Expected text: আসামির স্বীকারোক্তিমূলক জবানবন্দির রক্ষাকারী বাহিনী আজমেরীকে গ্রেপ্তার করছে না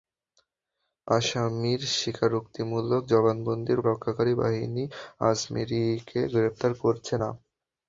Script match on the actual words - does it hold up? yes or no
yes